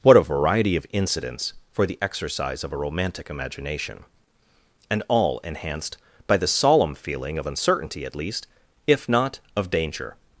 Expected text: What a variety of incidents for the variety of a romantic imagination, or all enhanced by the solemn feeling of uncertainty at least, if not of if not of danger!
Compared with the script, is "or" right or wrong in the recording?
wrong